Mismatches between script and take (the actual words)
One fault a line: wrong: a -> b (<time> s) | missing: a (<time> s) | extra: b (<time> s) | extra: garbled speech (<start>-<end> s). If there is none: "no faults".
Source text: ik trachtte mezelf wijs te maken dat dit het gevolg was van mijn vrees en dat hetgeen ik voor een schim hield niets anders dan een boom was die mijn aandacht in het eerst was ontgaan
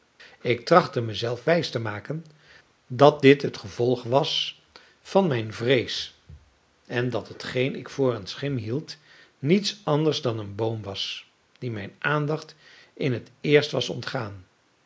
no faults